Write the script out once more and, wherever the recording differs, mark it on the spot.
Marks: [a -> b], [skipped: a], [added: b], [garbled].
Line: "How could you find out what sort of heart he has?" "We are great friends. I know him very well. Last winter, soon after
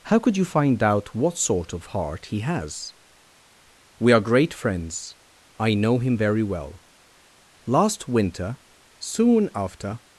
"How could you find out what sort of heart he has?" "We are great friends. I know him very well. Last winter, soon after